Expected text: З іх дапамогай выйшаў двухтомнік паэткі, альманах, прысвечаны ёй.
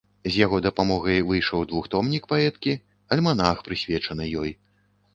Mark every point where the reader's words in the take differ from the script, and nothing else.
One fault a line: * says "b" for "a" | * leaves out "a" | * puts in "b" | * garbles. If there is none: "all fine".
* says "яго" for "іх"